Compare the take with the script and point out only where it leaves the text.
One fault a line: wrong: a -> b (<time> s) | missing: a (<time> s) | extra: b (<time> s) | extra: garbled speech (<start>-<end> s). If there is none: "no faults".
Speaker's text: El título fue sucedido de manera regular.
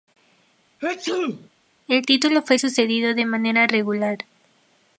no faults